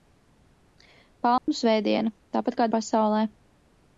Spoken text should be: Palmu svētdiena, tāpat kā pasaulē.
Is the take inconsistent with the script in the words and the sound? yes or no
yes